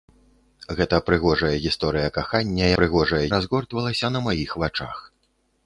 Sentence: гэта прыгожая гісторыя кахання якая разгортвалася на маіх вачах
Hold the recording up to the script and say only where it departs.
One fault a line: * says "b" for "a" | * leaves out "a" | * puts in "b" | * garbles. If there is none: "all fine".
* says "прыгожая" for "якая"